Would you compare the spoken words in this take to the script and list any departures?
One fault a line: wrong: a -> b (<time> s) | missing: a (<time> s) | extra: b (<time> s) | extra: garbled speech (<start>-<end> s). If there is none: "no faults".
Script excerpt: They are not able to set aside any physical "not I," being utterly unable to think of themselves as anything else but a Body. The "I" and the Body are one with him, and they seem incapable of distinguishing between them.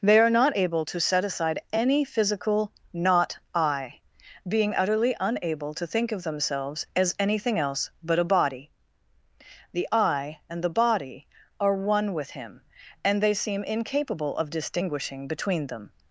no faults